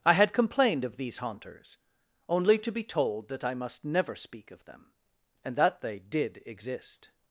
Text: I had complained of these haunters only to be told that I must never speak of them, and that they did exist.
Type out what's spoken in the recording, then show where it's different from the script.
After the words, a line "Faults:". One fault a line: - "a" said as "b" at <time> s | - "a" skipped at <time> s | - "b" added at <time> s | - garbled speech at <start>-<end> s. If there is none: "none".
I had complained of these haunters only to be told that I must never speak of them, and that they did exist.
Faults:
none